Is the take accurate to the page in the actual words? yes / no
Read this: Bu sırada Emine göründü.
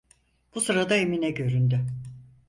yes